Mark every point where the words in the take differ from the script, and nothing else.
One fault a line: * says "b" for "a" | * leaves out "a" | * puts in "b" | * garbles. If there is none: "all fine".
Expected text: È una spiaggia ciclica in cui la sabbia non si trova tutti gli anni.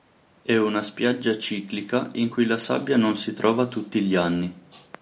all fine